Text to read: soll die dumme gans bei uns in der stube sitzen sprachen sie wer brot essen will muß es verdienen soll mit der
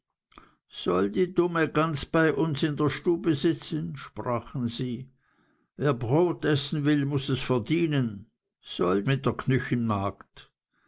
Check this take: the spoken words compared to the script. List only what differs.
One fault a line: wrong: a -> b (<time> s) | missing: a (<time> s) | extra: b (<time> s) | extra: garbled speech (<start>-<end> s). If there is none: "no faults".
no faults